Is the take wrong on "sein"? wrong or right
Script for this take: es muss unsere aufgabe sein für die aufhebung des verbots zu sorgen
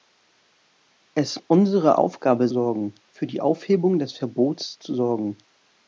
wrong